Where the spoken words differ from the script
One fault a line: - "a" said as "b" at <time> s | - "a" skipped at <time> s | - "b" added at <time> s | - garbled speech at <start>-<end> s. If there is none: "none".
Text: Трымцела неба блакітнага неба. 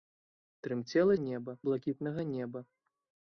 none